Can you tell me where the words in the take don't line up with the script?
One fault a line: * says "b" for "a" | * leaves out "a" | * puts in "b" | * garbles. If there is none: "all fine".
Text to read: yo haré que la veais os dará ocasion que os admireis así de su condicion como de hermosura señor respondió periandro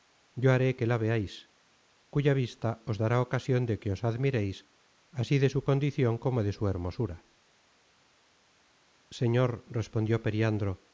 * puts in "cuya vista"
* puts in "de"
* puts in "su"